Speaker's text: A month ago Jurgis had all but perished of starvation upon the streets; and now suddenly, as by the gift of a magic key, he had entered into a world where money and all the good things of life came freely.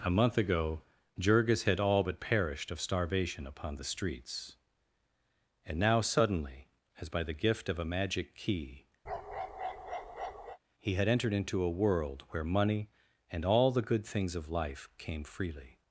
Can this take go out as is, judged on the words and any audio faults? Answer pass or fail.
fail